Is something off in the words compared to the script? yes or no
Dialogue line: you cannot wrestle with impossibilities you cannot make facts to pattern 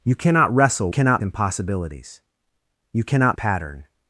yes